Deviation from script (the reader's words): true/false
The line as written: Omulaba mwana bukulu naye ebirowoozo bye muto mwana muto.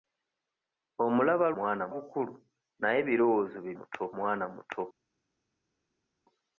false